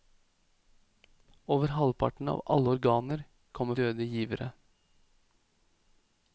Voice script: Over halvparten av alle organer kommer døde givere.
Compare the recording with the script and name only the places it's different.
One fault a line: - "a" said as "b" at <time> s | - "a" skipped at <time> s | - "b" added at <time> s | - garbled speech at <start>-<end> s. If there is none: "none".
none